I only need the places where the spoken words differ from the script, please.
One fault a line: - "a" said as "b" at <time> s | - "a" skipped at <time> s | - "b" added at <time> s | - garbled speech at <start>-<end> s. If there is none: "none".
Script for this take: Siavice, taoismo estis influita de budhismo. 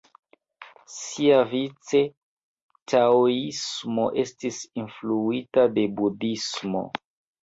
none